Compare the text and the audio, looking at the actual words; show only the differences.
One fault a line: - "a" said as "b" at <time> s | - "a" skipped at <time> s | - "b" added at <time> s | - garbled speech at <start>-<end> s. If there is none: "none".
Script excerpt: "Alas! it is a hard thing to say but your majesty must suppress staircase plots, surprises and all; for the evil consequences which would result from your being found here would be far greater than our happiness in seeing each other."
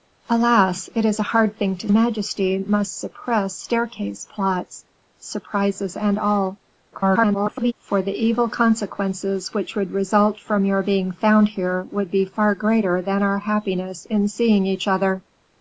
- "say but your" skipped at 1.9 s
- garbled speech at 6.9-7.7 s